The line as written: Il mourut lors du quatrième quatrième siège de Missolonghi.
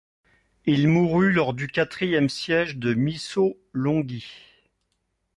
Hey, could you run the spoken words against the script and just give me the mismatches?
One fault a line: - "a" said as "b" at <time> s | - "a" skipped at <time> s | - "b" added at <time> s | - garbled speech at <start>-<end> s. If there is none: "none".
- "quatrième" skipped at 2.3 s